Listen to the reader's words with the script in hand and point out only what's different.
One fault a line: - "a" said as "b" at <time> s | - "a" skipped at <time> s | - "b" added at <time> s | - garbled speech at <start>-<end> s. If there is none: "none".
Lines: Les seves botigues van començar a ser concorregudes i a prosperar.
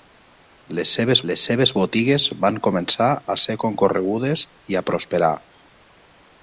- "les seves" added at 1.3 s